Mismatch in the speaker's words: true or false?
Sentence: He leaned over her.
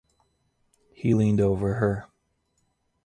false